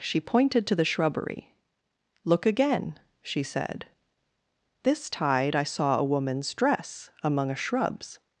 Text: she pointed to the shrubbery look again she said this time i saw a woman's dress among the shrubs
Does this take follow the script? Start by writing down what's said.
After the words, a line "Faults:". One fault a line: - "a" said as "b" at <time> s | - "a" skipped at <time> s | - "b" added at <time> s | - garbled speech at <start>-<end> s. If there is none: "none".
she pointed to the shrubbery look again she said this tide i saw a woman's dress among a shrubs
Faults:
- "time" said as "tide" at 5.1 s
- "the" said as "a" at 7.5 s